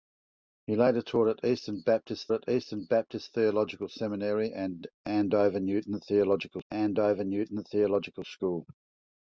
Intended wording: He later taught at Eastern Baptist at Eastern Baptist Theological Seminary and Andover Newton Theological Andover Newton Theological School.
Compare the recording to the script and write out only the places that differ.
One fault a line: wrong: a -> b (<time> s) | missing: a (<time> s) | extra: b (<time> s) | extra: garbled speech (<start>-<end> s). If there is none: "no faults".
no faults